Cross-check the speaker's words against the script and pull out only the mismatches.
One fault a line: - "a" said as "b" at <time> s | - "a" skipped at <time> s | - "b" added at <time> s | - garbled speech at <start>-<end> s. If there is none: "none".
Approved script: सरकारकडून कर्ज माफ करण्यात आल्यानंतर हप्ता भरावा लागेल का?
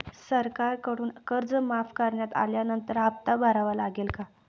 none